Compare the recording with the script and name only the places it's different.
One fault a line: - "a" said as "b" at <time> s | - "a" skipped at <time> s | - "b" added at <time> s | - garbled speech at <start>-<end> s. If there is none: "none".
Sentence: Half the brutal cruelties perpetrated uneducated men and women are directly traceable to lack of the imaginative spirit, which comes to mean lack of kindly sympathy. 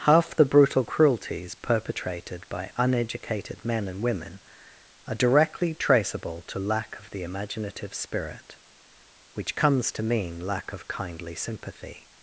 - "by" added at 2.5 s